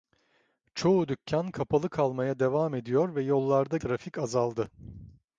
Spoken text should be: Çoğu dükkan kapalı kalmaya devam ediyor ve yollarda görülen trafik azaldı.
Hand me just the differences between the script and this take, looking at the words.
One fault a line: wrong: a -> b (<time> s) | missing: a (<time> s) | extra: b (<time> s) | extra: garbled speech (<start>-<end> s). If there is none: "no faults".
missing: görülen (3.8 s)